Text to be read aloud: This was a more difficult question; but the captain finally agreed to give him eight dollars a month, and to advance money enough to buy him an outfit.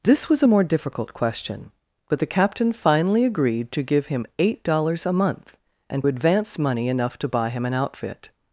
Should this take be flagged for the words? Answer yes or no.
yes